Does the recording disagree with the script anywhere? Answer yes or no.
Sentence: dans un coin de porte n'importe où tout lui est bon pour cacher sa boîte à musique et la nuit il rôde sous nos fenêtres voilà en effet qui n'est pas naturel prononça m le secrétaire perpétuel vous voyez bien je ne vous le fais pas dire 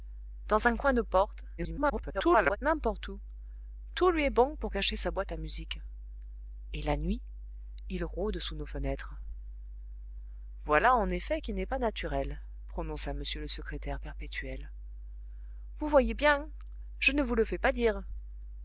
yes